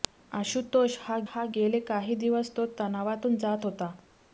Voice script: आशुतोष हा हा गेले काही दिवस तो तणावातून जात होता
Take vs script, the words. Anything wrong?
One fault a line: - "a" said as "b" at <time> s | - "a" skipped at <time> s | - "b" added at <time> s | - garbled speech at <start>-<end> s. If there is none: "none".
none